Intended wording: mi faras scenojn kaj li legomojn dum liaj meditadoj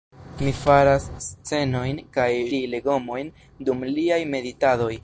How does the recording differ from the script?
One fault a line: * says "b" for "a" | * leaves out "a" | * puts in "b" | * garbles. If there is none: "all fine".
all fine